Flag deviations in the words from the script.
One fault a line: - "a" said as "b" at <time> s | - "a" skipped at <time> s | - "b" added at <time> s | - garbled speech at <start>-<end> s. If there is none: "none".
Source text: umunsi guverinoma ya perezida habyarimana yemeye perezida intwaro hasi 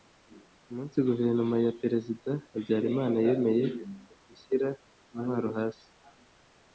- "perezida" said as "gushyira" at 4.3 s